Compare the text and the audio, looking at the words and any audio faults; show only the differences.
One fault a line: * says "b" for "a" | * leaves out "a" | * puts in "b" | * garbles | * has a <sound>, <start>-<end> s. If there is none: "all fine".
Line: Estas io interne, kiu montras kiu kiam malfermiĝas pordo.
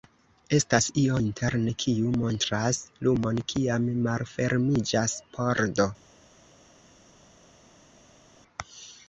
* says "lumon" for "kiu"